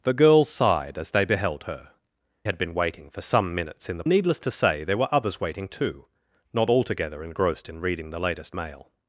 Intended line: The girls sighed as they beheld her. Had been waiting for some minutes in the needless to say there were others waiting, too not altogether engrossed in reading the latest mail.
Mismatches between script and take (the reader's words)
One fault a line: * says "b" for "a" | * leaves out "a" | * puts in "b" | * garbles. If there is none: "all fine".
all fine